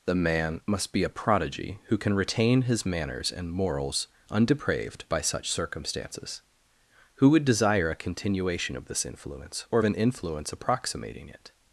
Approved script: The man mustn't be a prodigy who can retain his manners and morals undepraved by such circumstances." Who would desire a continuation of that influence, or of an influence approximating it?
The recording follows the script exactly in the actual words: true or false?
false